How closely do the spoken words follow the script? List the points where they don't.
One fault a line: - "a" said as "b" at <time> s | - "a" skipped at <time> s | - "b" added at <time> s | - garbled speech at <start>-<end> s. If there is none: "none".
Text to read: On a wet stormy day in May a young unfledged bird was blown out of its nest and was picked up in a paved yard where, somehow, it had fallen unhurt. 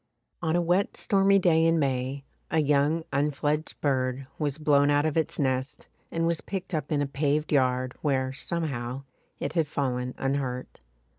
none